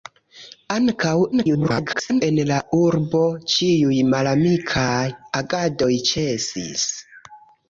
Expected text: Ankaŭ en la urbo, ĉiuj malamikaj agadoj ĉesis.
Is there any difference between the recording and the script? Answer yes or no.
yes